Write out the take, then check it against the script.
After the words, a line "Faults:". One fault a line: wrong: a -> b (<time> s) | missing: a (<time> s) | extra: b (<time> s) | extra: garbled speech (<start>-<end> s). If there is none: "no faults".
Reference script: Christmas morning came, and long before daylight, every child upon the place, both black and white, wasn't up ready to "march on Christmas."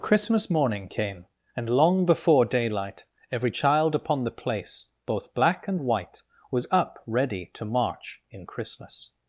Christmas morning came, and long before daylight, every child upon the place, both black and white, was up ready to "march in Christmas."
Faults:
wrong: wasn't -> was (6.5 s)
wrong: on -> in (8.3 s)